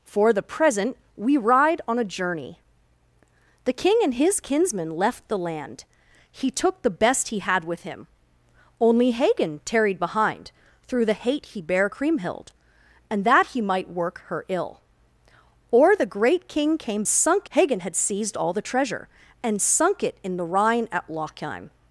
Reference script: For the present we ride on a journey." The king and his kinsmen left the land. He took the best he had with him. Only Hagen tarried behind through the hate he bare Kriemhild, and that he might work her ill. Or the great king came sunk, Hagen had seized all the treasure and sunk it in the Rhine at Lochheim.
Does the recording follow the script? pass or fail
pass